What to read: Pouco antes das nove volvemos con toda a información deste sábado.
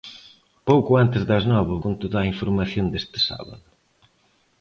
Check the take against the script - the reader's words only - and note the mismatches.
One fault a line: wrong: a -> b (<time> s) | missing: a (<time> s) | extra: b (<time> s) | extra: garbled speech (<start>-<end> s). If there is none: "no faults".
missing: volvemos (1.8 s)